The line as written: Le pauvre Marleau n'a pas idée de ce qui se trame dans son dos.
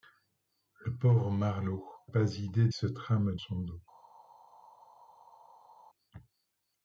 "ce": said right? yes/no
no